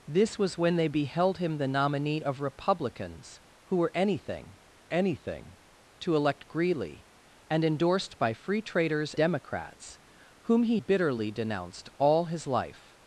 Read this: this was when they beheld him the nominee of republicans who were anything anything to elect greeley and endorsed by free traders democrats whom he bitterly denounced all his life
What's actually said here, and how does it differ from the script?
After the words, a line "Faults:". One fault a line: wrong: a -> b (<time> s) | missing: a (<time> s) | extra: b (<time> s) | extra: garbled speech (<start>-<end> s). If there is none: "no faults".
this was when they beheld him the nominee of republicans who were anything anything to elect greeley and endorsed by free traders democrats whom he bitterly denounced all his life
Faults:
no faults